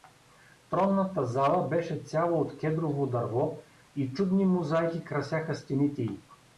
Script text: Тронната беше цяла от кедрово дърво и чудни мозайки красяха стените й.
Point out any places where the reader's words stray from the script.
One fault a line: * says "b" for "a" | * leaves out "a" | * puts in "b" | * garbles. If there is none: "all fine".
* puts in "зала"